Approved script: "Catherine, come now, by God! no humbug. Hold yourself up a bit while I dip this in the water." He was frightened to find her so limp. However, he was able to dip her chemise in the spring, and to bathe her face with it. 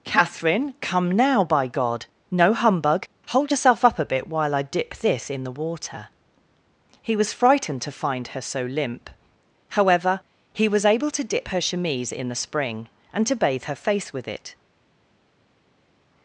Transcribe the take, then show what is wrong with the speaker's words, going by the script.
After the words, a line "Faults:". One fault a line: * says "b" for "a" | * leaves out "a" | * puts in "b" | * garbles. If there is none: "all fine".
"Catherine, come now, by God! no humbug. Hold yourself up a bit while I dip this in the water." He was frightened to find her so limp. However, he was able to dip her chemise in the spring, and to bathe her face with it.
Faults:
all fine